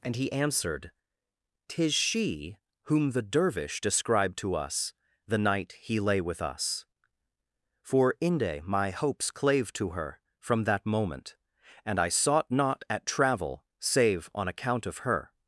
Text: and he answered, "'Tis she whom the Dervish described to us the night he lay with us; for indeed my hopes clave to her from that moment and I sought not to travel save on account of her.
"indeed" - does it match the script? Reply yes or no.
no